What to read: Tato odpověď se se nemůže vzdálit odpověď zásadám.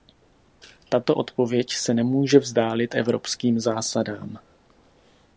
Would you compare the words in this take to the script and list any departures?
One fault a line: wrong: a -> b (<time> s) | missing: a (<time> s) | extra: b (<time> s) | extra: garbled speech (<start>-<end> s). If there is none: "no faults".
missing: se (1.9 s)
wrong: odpověď -> evropským (2.9 s)